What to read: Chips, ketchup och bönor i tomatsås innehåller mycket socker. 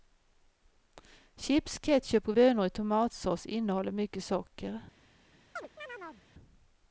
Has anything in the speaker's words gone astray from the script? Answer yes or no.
no